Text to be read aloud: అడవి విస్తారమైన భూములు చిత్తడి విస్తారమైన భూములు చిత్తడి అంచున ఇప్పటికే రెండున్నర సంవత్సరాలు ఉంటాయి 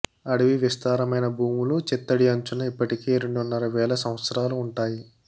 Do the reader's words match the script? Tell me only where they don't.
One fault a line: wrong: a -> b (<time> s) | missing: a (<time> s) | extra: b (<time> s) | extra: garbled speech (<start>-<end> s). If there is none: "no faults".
missing: విస్తారమైన భూములు చిత్తడి (2.3 s)
extra: వేల (3.8 s)